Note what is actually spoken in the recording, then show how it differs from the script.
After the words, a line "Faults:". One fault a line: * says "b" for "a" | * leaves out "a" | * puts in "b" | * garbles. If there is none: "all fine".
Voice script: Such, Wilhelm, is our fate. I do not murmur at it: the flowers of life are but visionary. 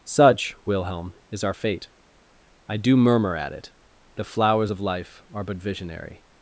Such, Wilhelm, is our fate. I do murmur at it: the flowers of life are but visionary.
Faults:
* leaves out "not"